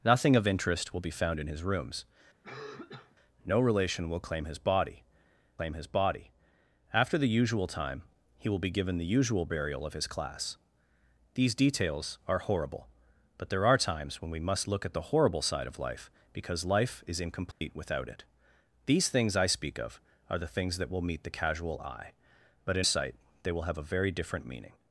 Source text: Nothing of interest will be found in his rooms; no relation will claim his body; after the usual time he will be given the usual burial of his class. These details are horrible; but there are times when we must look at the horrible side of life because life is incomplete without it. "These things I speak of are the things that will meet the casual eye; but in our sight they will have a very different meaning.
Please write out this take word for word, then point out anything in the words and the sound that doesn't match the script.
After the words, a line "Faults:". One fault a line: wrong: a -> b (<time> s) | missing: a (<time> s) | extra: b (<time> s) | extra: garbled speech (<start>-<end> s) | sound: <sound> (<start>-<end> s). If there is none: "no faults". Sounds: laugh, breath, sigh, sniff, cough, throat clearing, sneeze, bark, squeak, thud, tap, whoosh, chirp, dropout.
Nothing of interest will be found in his rooms; no relation will claim his body claim his body; after the usual time he will be given the usual burial of his class. These details are horrible; but there are times when we must look at the horrible side of life because life is incomplete without it. "These things I speak of are the things that will meet the casual eye; but in sight they will have a very different meaning.
Faults:
sound: cough (2.4-3.2 s)
extra: claim his body (5.6 s)
sound: dropout (17.5-17.6 s)
missing: our (22.9 s)